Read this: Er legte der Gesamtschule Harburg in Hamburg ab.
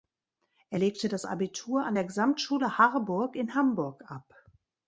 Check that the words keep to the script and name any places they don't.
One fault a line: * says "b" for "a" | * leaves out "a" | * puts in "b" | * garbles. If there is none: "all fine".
* puts in "das Abitur an"